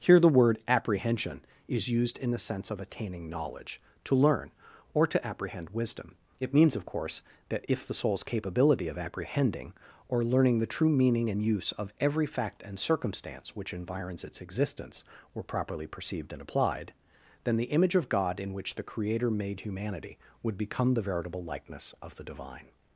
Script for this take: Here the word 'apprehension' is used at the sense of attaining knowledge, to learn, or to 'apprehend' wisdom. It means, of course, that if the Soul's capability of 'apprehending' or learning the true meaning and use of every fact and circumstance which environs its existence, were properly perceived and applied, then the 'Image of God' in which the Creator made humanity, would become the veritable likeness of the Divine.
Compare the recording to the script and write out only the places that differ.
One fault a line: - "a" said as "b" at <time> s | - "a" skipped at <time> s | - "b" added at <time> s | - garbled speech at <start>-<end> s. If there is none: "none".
- "at" said as "in" at 2.2 s